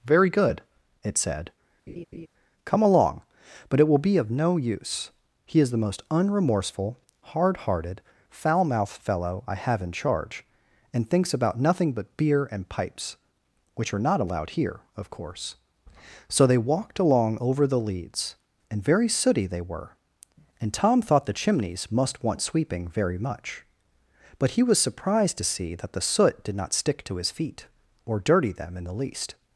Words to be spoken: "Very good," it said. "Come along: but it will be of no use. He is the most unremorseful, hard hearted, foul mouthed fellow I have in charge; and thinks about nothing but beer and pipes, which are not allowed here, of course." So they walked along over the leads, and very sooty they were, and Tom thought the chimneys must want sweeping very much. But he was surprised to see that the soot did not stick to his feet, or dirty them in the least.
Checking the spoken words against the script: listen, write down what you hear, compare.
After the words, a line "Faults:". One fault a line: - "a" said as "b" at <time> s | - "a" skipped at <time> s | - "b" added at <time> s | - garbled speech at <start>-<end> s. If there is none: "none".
"Very good," it said. "Come along: but it will be of no use. He is the most unremorseful, hard hearted, foul mouthed fellow I have in charge; and thinks about nothing but beer and pipes, which are not allowed here, of course." So they walked along over the leads, and very sooty they were, and Tom thought the chimneys must want sweeping very much. But he was surprised to see that the soot did not stick to his feet, or dirty them in the least.
Faults:
none